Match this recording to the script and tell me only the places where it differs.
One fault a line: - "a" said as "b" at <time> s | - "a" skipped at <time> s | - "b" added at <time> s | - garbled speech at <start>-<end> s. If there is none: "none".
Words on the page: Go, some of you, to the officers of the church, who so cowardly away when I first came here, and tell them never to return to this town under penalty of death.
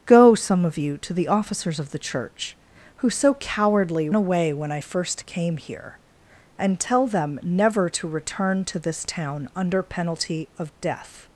none